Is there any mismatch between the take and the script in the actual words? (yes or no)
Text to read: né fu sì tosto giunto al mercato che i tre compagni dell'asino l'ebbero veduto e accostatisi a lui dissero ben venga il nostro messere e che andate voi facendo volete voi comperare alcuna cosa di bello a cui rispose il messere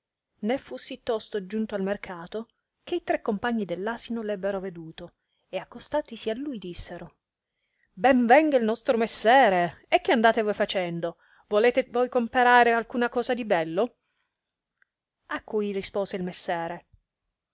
no